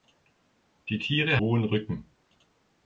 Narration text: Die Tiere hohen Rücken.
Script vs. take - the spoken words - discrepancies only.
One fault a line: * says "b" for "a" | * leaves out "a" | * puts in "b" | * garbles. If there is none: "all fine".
all fine